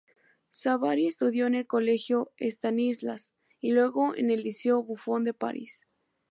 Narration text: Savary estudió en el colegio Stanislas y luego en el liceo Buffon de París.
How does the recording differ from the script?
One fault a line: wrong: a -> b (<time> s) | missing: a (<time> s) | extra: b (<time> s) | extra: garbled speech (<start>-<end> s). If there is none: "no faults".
no faults